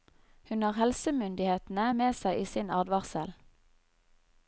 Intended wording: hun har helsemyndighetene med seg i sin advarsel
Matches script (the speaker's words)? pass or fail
pass